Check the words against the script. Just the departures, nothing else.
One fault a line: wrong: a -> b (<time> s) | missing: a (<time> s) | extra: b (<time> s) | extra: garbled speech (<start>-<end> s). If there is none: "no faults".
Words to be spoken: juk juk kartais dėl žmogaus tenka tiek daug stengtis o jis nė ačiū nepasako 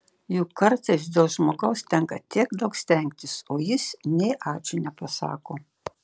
missing: juk (0.5 s)